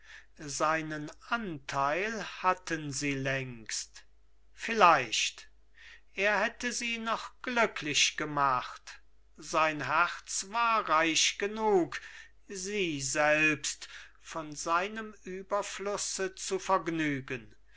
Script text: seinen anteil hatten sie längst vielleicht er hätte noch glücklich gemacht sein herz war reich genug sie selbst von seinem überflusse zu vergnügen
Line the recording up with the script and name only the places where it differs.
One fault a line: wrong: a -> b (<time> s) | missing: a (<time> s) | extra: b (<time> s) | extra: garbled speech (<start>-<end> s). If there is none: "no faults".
extra: sie (6.7 s)